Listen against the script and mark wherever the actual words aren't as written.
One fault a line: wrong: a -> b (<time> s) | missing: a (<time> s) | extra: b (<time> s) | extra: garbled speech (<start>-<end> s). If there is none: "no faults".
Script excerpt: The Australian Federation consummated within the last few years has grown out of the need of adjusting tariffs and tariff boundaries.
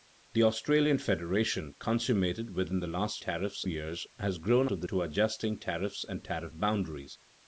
wrong: few -> tariffs (3.2 s)
missing: out (4.7 s)
missing: need (4.9 s)